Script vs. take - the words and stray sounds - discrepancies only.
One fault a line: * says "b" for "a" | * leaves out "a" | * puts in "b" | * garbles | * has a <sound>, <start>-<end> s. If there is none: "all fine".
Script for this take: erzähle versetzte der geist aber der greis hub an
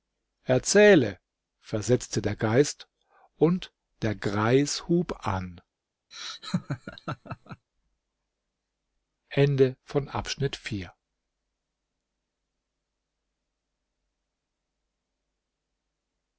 * says "und" for "aber"
* has a laugh, 6.1-7.7 s